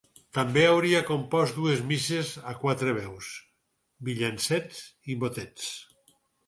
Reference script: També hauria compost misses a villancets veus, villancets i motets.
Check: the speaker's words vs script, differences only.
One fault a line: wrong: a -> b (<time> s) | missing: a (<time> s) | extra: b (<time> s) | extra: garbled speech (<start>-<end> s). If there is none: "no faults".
extra: dues (1.6 s)
wrong: villancets -> quatre (2.6 s)